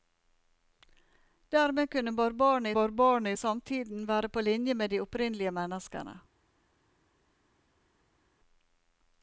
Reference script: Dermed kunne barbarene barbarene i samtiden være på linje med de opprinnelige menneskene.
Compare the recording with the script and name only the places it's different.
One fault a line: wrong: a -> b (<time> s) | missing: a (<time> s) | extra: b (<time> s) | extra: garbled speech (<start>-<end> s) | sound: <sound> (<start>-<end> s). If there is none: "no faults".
no faults